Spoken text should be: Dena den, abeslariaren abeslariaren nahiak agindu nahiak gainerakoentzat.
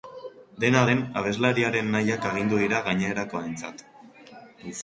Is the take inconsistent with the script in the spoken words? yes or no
yes